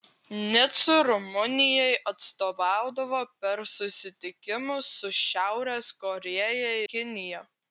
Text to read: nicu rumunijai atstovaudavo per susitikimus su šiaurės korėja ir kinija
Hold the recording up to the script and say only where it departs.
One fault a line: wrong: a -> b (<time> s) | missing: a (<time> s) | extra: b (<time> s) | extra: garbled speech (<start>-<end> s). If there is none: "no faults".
missing: ir (6.7 s)